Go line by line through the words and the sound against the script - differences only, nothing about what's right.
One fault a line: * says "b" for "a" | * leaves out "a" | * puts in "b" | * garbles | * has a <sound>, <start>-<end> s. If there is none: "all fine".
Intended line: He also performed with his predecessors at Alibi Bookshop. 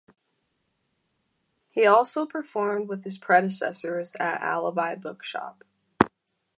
all fine